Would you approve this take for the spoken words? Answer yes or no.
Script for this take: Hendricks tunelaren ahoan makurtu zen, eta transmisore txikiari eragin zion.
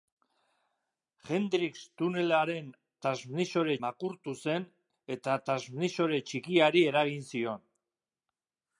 no